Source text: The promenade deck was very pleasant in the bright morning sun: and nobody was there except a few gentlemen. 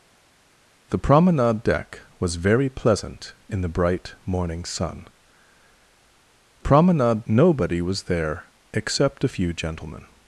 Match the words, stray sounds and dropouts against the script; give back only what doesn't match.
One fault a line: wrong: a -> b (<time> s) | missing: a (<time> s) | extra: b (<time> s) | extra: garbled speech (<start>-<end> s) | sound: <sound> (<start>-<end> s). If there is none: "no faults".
wrong: and -> promenade (6.6 s)